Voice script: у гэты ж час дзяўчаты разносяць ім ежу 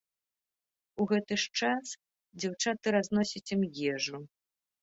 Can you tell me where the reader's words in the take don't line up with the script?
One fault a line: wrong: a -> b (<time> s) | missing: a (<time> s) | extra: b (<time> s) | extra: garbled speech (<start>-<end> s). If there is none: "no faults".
no faults